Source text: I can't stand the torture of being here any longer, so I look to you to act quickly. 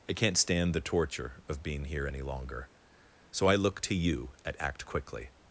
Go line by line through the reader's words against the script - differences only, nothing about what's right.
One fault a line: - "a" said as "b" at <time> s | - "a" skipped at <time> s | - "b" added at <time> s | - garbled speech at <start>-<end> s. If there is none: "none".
- "to" said as "at" at 4.4 s